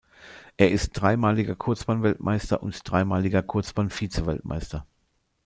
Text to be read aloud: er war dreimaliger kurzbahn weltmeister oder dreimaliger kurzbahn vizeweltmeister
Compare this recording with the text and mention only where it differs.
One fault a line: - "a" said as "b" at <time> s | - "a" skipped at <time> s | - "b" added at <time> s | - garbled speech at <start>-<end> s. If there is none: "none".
- "war" said as "ist" at 0.7 s
- "oder" said as "und" at 2.6 s